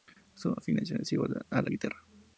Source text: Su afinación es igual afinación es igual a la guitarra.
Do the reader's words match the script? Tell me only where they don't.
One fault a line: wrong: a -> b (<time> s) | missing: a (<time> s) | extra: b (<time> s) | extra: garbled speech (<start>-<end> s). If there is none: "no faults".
missing: afinación es igual (1.4 s)